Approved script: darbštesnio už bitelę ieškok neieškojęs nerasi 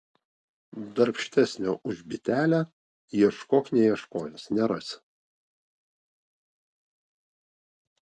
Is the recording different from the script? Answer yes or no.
no